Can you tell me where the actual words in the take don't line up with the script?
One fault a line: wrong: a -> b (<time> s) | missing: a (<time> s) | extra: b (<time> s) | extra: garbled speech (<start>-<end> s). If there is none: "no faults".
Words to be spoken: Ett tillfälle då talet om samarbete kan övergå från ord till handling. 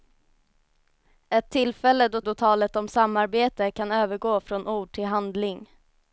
extra: då (2.2 s)